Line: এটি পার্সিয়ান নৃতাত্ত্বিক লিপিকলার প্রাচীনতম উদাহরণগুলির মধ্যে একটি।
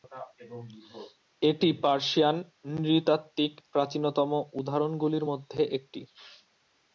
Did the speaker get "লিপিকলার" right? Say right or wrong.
wrong